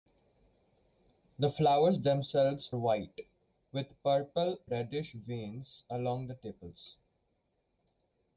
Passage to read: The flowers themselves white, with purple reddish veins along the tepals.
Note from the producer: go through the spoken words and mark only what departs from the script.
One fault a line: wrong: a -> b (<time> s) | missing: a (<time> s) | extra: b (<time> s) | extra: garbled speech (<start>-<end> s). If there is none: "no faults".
no faults